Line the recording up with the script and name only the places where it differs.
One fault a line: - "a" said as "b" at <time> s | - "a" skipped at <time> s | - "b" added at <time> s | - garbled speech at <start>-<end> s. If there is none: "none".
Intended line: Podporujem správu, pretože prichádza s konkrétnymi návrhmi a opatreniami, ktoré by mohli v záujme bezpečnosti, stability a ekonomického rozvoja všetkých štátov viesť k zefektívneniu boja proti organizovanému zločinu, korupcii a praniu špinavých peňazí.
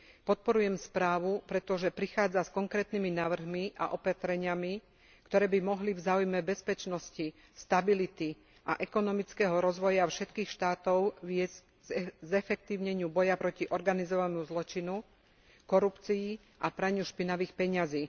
none